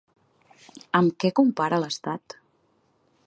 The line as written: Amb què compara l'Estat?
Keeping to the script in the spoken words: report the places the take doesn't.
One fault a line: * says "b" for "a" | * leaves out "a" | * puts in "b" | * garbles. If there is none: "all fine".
all fine